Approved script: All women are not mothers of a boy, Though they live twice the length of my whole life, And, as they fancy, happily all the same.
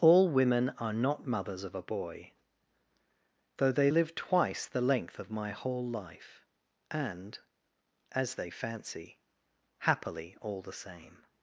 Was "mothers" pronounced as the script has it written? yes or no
yes